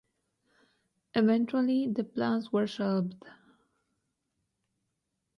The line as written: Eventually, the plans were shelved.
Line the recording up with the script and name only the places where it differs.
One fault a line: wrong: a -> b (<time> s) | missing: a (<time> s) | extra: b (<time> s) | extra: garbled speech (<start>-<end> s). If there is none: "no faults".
no faults